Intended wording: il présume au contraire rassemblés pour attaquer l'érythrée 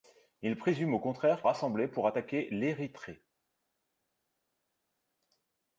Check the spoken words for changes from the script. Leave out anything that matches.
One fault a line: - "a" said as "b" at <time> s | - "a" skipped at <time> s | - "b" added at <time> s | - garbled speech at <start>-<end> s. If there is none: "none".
none